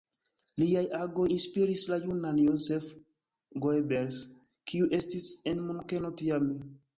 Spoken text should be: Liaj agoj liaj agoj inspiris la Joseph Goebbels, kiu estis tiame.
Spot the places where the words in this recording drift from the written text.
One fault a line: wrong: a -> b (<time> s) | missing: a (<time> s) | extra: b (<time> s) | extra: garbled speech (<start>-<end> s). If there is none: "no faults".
missing: liaj agoj (1.2 s)
extra: junan (2.0 s)
extra: en Munkeno (5.6 s)